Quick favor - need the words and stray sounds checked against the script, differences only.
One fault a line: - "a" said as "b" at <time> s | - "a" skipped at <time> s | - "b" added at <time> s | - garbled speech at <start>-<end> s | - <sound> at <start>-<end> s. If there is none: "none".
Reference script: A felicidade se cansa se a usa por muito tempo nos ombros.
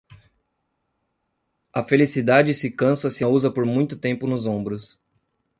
none